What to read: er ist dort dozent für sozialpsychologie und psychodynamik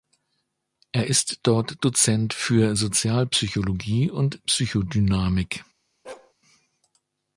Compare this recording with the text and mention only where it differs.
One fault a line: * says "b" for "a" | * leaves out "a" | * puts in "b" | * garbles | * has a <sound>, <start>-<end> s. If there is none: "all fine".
* has a bark, 6.0-6.3 s